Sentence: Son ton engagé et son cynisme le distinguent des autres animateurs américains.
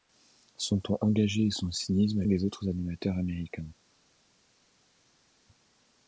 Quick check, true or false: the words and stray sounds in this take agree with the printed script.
false